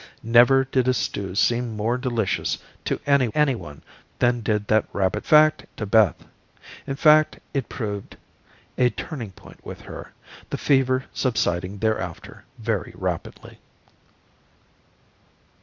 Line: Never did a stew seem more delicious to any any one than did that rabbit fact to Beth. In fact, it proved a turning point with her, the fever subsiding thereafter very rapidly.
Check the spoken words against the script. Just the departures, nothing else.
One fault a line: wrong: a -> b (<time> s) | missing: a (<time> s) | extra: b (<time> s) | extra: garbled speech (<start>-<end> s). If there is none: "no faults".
no faults